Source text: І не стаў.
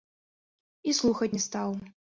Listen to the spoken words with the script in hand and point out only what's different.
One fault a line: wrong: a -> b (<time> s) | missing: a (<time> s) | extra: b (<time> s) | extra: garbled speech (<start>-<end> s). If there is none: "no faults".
extra: слухаць (1.0 s)